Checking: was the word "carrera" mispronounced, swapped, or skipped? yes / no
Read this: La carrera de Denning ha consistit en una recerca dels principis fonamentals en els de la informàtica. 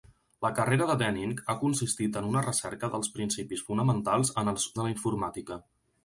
no